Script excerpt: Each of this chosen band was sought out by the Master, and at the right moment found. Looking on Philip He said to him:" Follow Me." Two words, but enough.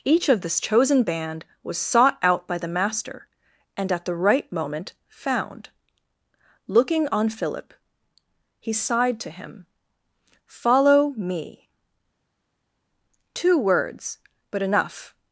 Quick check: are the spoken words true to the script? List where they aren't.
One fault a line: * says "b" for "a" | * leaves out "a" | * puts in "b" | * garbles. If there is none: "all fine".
* says "sighed" for "said"